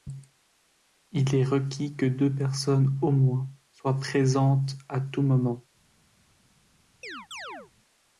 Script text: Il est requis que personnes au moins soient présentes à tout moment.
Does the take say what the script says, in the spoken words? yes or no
no